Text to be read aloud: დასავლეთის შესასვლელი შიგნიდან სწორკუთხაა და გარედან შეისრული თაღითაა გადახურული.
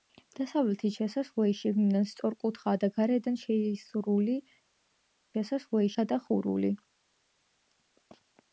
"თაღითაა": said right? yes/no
no